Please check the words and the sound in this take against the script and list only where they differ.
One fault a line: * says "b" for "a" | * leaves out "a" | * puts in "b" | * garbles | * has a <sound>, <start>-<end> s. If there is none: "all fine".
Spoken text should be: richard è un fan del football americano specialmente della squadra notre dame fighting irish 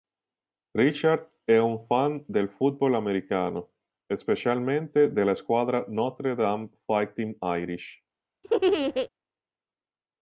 * has a laugh, 8.4-9.1 s